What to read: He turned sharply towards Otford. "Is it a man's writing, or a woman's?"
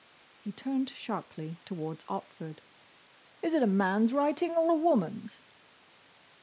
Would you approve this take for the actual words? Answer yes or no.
yes